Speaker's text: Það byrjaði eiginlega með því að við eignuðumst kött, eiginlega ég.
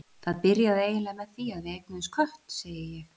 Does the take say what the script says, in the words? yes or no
no